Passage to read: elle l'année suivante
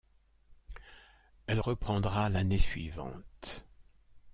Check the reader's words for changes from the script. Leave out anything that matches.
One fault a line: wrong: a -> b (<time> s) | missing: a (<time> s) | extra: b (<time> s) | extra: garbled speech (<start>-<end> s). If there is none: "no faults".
extra: reprendra (1.6 s)